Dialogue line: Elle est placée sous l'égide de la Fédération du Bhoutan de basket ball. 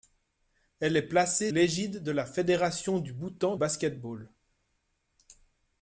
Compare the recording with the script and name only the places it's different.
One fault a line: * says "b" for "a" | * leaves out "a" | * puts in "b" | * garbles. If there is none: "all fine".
* leaves out "sous"
* leaves out "de"